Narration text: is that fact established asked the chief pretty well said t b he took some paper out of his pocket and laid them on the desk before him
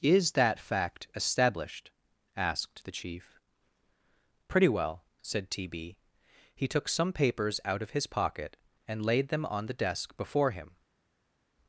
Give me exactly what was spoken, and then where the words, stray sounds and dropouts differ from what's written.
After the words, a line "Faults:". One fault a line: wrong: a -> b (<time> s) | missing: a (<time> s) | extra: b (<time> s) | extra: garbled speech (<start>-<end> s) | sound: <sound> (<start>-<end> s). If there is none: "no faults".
is that fact established asked the chief pretty well said t b he took some papers out of his pocket and laid them on the desk before him
Faults:
wrong: paper -> papers (7.1 s)